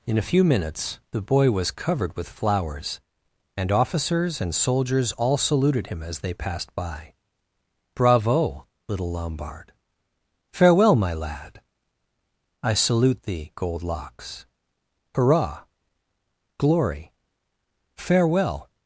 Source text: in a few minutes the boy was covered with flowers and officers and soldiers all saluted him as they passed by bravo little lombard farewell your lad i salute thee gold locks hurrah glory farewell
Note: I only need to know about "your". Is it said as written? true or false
false